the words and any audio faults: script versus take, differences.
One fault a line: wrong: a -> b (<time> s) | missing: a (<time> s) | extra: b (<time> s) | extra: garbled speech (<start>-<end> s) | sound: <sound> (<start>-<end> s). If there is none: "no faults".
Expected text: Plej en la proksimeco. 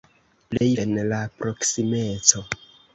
sound: dropout (0.6-0.6 s)